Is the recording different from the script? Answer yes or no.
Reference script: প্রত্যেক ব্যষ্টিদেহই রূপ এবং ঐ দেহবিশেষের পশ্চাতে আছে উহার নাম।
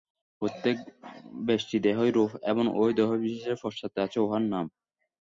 no